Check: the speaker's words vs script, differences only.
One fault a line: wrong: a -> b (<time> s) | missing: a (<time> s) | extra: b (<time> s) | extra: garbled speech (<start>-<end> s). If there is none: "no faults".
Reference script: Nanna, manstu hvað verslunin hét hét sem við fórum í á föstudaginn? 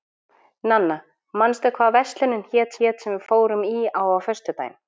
no faults